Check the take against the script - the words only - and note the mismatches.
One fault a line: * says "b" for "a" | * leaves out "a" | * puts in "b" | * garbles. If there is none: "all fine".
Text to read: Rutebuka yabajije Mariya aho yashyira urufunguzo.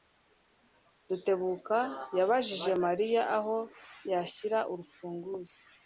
all fine